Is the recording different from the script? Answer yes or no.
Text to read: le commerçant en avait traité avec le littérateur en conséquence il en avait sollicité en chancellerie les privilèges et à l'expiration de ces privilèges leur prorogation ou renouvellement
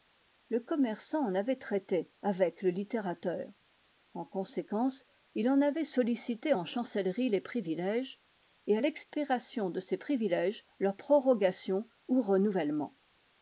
no